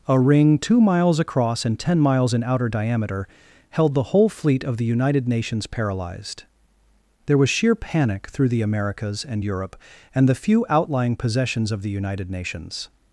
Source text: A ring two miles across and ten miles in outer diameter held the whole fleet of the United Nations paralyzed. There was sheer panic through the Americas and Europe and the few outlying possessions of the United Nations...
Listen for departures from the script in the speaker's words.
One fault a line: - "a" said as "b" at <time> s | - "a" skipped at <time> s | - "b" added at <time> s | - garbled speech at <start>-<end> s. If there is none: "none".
none